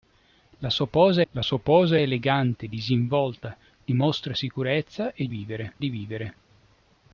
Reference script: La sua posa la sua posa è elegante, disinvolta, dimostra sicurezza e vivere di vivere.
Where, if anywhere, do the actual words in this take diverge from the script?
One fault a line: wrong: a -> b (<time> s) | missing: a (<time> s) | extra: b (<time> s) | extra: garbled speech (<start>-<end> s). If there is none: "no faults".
no faults